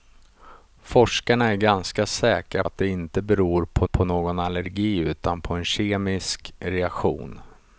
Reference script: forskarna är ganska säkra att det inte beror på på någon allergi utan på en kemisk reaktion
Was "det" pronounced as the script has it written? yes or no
yes